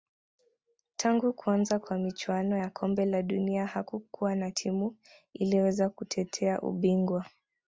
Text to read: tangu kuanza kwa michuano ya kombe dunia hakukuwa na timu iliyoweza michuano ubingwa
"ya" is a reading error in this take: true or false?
false